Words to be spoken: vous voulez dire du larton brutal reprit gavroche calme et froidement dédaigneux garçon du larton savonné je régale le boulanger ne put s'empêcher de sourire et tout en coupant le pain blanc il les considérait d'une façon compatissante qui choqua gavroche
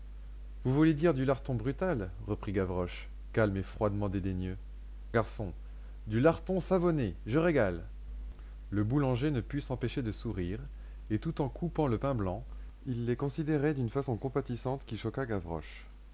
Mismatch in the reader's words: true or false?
false